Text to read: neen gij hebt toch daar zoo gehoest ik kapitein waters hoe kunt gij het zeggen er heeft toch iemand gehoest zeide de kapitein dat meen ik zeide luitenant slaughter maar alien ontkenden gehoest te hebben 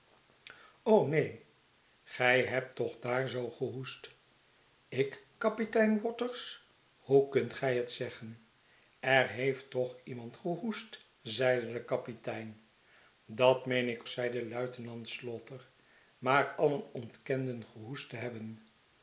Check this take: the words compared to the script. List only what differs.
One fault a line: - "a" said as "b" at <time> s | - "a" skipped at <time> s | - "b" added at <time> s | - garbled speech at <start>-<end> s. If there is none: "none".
none